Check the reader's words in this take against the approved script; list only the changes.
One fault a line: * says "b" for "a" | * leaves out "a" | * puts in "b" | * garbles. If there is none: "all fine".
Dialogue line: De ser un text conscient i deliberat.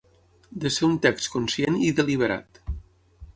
all fine